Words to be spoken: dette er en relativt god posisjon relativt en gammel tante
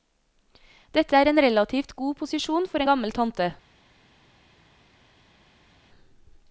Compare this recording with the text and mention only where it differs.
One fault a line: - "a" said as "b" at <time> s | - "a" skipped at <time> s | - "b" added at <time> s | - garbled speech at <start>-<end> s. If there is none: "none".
- "relativt" said as "for" at 2.7 s